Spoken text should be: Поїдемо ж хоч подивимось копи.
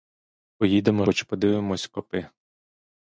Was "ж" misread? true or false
true